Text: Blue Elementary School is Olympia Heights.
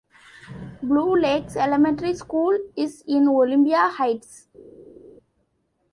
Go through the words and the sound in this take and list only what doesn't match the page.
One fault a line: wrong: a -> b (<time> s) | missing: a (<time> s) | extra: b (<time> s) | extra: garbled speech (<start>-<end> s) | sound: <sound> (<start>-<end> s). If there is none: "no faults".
extra: Lakes (1.1 s)
extra: in (3.1 s)